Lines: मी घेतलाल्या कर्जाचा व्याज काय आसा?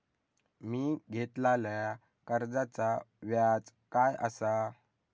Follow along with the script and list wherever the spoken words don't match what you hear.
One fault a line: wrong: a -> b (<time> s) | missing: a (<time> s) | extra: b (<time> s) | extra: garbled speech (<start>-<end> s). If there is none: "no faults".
no faults